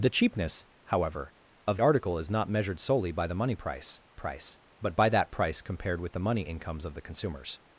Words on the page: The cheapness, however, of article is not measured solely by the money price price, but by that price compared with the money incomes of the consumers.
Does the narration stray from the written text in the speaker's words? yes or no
no